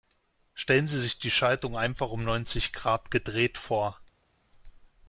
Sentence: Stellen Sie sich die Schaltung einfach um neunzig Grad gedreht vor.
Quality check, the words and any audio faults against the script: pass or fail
pass